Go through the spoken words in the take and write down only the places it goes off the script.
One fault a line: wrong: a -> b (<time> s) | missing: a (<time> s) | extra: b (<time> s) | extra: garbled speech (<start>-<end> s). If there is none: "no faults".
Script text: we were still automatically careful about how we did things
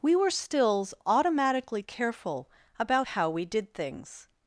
wrong: still -> stills (0.3 s)